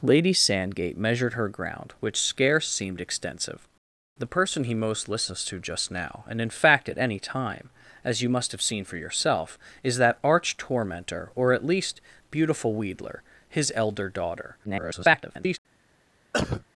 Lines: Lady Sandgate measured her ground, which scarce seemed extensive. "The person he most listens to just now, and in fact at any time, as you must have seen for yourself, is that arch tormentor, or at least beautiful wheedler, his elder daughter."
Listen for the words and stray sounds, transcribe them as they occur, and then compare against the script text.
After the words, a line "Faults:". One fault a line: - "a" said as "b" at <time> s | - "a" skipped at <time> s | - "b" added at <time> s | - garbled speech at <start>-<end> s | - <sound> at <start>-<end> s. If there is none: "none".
Lady Sandgate measured her ground, which scarce seemed extensive. "The person he most listens to just now, and in fact at any time, as you must have seen for yourself, is that arch tormentor, or at least beautiful wheedler, his elder daughter." [garbled]
Faults:
- garbled speech at 14.6-15.6 s
- cough at 16.3-16.7 s